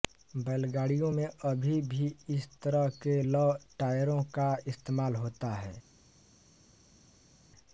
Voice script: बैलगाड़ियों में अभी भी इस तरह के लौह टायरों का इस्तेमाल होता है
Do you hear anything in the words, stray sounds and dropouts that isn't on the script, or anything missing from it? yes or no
no